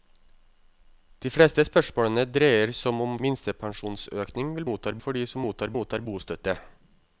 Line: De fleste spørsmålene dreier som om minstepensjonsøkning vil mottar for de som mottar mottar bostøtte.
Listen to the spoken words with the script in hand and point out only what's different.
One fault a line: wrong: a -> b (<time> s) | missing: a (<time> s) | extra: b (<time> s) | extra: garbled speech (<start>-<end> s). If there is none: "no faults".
no faults